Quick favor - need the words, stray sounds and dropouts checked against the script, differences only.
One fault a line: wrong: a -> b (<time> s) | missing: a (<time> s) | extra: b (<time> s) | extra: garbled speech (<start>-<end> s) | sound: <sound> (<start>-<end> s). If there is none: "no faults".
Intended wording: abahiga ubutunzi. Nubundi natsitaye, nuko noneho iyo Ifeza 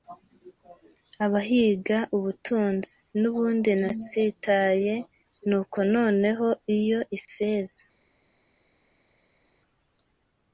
no faults